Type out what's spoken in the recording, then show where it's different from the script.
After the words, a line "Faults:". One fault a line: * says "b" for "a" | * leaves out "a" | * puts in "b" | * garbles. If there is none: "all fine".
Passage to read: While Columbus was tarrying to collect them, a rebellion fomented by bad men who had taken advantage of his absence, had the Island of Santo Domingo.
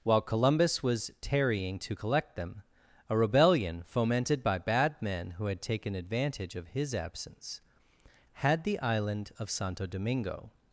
While Columbus was tarrying to collect them, a rebellion fomented by bad men who had taken advantage of his absence, had the Island of Santo Domingo.
Faults:
all fine